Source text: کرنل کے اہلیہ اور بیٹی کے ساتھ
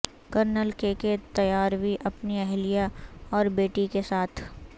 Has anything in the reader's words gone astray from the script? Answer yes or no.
yes